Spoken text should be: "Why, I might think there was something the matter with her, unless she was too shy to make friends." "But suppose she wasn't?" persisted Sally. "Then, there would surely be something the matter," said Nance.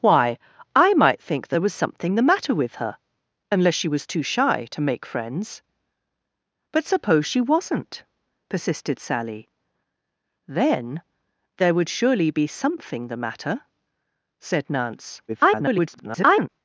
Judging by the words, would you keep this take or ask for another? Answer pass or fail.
fail